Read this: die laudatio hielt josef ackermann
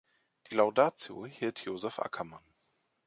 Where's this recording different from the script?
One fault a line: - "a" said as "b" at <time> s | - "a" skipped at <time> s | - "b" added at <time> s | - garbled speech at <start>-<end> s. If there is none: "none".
none